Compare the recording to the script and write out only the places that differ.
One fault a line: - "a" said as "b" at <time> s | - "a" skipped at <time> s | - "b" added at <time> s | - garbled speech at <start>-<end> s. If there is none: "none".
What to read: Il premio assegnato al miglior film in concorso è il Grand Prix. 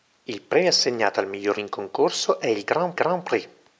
- "film" skipped at 1.6 s
- "Grand" added at 2.9 s